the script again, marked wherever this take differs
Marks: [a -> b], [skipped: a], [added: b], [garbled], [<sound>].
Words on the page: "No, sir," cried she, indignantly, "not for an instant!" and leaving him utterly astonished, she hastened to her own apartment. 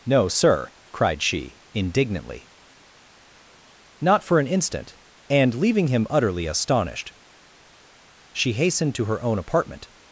"No, sir," cried she, indignantly, "not for an instant!" and leaving him utterly astonished, she hastened to her own apartment.